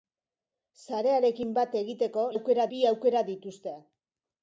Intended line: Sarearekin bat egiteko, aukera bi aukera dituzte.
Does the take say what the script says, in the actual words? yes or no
yes